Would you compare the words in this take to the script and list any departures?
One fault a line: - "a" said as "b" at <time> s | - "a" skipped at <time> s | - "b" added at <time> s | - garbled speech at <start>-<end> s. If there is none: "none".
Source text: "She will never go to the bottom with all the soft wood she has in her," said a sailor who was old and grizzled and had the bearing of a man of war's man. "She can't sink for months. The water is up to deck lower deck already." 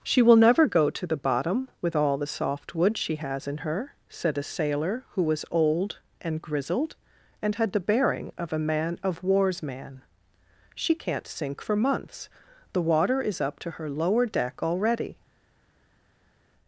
- "deck" said as "her" at 13.7 s